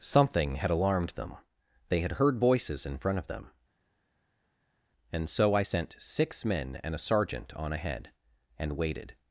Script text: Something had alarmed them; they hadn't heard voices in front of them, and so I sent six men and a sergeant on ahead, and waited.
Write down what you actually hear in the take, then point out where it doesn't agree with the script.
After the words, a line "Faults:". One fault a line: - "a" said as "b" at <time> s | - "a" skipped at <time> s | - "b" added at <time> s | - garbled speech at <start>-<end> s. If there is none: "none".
Something had alarmed them; they had heard voices in front of them, and so I sent six men and a sergeant on ahead, and waited.
Faults:
- "hadn't" said as "had" at 2.0 s